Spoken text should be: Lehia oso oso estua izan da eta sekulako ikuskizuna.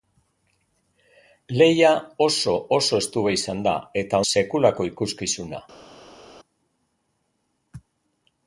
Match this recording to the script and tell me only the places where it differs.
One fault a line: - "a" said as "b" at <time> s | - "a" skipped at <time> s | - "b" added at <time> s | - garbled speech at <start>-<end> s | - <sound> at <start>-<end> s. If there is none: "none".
none